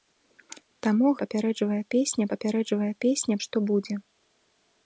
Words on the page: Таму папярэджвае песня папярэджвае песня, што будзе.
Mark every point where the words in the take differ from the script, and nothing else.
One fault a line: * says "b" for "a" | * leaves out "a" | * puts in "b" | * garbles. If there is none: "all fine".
all fine